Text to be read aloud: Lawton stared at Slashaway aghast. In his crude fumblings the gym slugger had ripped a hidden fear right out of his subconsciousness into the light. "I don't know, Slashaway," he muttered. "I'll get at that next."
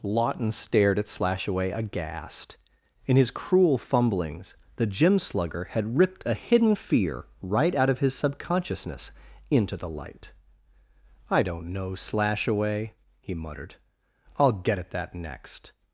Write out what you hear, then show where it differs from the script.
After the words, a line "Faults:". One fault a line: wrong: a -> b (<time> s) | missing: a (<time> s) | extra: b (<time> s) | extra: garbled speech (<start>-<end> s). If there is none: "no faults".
Lawton stared at Slashaway aghast. In his cruel fumblings the gym slugger had ripped a hidden fear right out of his subconsciousness into the light. "I don't know, Slashaway," he muttered. "I'll get at that next."
Faults:
wrong: crude -> cruel (3.3 s)